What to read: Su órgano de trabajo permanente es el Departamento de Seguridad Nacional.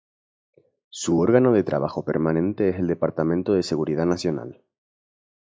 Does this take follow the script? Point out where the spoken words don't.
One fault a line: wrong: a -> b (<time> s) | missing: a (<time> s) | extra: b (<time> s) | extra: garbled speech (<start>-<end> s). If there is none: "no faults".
no faults